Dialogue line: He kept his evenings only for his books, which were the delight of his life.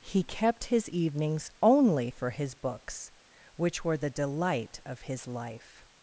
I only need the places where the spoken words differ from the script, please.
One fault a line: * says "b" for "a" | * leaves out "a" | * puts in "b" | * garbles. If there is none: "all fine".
all fine